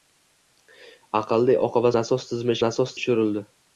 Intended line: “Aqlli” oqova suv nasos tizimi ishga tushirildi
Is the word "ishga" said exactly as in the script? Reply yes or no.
no